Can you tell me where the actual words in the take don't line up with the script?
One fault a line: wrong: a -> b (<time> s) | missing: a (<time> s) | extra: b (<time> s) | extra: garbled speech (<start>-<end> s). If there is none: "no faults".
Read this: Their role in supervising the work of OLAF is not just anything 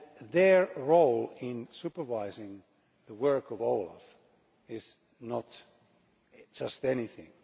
no faults